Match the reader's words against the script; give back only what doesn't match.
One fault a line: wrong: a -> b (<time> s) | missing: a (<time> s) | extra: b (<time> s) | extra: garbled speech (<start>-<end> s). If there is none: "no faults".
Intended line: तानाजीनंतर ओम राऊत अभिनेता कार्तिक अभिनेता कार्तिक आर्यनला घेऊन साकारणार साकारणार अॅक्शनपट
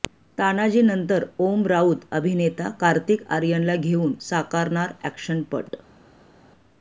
missing: अभिनेता कार्तिक (3.2 s)
missing: साकारणार (4.9 s)